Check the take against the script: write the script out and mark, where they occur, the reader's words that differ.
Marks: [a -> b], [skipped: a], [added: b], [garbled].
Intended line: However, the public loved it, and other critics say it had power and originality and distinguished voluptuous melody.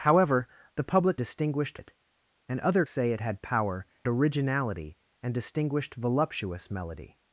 However, the public [loved -> distinguished] it, and other [skipped: critics] say it had power [skipped: and] originality and distinguished voluptuous melody.